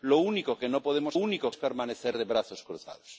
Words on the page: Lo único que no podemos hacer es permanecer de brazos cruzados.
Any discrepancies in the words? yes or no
yes